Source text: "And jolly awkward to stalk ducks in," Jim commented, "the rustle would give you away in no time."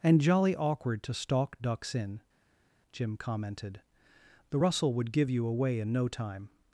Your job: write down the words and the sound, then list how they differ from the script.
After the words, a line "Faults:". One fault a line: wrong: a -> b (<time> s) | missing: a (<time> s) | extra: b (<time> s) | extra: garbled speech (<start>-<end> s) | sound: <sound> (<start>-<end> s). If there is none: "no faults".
"And jolly awkward to stalk ducks in," Jim commented, "the rustle would give you away in no time."
Faults:
no faults